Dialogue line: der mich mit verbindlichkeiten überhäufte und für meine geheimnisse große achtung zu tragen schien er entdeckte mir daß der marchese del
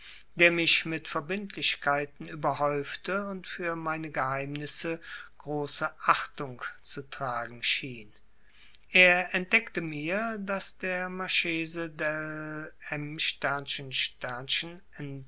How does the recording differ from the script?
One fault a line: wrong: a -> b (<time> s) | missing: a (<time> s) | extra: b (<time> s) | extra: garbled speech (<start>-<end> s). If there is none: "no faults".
no faults